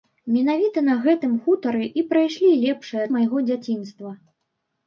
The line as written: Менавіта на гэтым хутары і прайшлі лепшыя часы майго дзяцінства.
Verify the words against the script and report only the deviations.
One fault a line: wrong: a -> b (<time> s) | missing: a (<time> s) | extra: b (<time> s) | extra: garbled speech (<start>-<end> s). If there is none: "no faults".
missing: часы (3.0 s)